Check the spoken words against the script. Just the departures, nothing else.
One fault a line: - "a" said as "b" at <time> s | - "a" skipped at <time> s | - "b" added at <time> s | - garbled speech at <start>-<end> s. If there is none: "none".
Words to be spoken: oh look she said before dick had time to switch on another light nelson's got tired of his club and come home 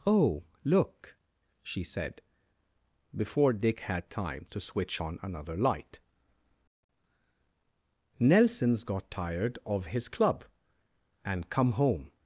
none